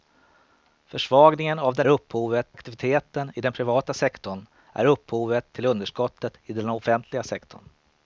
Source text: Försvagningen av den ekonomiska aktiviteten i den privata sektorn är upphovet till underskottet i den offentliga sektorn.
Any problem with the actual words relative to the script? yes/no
yes